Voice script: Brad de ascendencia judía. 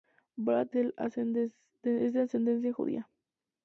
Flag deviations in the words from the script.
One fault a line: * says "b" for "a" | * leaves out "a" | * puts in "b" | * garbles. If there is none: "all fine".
all fine